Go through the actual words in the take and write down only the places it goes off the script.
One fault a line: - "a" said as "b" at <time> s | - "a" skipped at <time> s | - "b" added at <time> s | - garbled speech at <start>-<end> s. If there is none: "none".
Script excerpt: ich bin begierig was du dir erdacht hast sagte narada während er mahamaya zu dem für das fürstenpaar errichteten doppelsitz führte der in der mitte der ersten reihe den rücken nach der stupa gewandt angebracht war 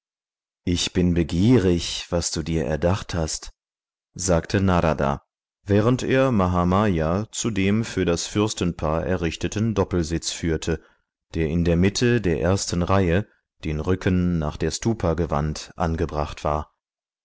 none